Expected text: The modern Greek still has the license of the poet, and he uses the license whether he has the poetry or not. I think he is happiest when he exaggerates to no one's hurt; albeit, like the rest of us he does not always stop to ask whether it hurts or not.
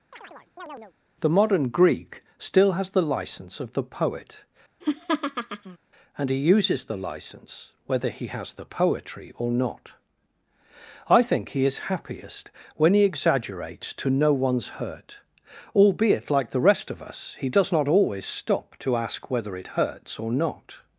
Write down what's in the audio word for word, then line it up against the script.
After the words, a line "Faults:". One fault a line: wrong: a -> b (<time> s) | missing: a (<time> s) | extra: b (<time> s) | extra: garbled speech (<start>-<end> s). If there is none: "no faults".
The modern Greek still has the license of the poet, and he uses the license whether he has the poetry or not. I think he is happiest when he exaggerates to no one's hurt; albeit, like the rest of us he does not always stop to ask whether it hurts or not.
Faults:
no faults